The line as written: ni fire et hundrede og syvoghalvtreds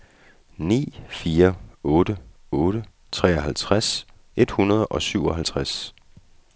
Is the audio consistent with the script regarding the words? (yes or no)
no